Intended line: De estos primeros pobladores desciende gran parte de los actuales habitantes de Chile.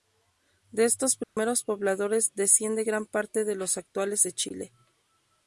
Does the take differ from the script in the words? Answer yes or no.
yes